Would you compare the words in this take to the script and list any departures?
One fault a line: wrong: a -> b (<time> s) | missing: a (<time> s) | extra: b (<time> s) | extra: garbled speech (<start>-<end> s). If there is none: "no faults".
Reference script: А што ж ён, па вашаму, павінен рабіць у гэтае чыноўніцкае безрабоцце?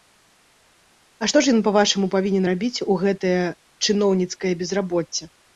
no faults